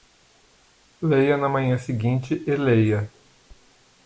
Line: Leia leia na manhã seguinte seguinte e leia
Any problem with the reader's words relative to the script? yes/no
yes